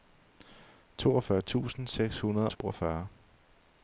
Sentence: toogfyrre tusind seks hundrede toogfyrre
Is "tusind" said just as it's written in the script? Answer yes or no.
yes